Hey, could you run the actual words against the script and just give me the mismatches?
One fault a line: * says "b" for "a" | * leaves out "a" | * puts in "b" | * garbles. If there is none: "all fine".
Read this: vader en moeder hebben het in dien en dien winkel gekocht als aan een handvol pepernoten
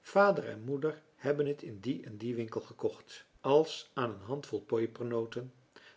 all fine